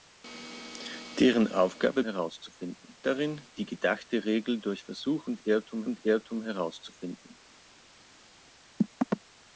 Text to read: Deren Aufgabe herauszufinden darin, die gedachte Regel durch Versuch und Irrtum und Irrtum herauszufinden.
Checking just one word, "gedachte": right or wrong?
right